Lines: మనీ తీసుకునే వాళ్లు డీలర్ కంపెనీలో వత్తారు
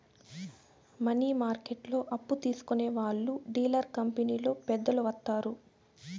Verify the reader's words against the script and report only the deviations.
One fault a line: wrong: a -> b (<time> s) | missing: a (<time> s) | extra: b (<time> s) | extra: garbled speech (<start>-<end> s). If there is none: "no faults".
extra: మార్కెట్లో అప్పు (1.4 s)
extra: పెద్దలు (4.7 s)